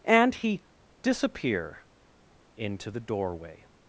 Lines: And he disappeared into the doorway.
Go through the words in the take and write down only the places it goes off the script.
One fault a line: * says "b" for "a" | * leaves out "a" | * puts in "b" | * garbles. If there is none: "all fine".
* says "disappear" for "disappeared"